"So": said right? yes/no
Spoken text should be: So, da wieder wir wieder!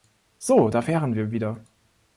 yes